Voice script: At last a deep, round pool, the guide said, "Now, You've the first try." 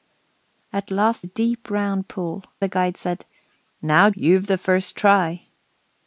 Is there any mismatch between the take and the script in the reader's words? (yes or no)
no